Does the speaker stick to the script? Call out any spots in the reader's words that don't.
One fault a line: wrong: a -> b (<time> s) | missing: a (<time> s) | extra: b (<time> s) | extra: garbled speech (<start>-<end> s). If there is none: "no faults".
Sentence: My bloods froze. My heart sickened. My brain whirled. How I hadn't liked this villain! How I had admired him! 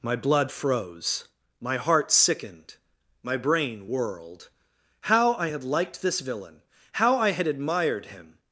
wrong: bloods -> blood (0.1 s)
wrong: hadn't -> had (5.5 s)